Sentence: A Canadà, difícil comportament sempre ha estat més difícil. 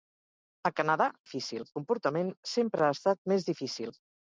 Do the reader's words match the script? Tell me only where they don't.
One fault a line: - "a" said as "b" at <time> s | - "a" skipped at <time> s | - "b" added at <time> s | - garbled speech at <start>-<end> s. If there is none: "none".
none